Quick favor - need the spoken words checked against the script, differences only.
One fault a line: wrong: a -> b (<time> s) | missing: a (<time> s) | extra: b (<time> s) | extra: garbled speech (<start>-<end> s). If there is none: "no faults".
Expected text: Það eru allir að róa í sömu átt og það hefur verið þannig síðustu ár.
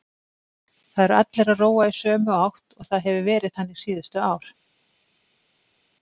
no faults